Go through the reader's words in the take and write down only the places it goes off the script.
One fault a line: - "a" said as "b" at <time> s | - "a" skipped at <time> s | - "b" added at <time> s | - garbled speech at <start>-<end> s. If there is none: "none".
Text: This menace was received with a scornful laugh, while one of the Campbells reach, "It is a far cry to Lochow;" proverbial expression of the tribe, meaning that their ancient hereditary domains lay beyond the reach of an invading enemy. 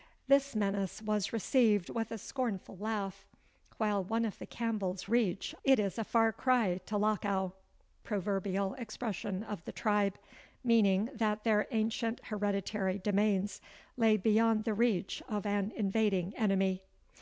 none